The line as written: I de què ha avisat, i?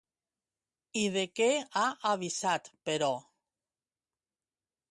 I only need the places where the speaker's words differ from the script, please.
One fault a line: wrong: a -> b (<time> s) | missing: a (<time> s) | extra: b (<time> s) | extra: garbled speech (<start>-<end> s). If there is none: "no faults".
wrong: i -> però (2.9 s)